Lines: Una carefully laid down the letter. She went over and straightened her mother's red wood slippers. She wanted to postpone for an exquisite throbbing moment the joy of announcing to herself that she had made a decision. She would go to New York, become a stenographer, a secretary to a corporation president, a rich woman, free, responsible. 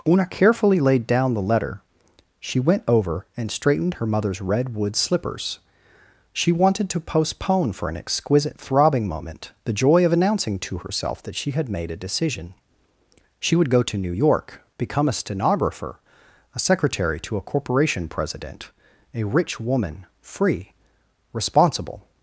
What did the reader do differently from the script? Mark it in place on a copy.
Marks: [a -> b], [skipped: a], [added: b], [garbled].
Una carefully laid down the letter. She went over and straightened her mother's red wood slippers. She wanted to postpone for an exquisite throbbing moment the joy of announcing to herself that she had made a decision. She would go to New York, become a stenographer, a secretary to a corporation president, a rich woman, free, responsible.